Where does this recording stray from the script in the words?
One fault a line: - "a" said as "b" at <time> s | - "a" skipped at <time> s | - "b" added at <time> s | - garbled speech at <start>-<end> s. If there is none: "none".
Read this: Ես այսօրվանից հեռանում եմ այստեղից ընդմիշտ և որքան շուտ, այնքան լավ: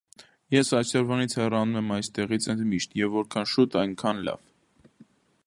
none